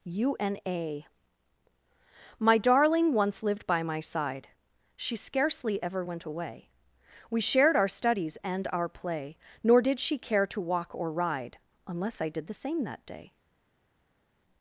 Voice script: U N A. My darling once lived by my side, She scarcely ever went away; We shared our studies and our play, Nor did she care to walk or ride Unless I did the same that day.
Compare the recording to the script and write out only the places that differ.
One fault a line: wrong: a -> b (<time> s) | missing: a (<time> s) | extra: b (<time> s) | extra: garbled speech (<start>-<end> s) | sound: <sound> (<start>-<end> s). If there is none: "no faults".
no faults